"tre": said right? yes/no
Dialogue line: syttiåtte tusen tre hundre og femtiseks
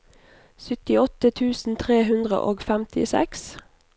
yes